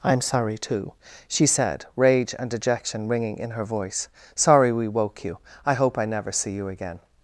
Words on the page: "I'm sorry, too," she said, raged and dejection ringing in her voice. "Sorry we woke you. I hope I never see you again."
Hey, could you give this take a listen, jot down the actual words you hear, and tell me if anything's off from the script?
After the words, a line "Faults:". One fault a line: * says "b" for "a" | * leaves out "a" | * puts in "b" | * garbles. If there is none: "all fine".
"I'm sorry, too," she said, rage and dejection ringing in her voice. "Sorry we woke you. I hope I never see you again."
Faults:
* says "rage" for "raged"